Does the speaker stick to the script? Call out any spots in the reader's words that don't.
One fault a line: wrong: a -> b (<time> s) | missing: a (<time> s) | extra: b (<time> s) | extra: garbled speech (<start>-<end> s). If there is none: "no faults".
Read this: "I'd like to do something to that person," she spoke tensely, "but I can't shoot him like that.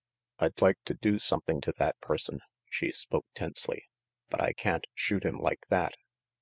no faults